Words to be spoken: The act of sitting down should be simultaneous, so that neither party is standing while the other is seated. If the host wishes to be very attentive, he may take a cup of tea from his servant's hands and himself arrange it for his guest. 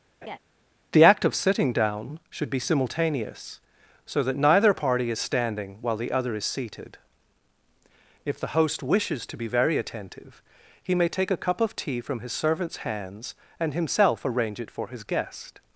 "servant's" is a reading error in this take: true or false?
false